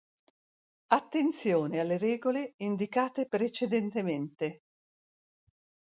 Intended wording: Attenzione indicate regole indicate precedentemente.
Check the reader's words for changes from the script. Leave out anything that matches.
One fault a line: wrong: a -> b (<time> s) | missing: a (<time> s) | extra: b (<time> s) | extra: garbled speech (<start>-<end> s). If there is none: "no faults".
wrong: indicate -> alle (1.8 s)